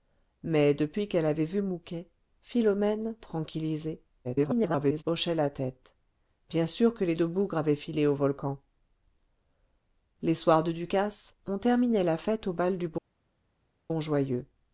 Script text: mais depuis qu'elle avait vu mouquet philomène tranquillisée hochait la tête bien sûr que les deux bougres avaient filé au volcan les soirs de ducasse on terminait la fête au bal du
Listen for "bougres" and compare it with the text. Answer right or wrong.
right